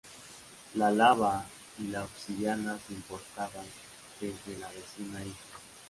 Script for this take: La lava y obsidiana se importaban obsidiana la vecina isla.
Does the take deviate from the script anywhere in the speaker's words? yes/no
yes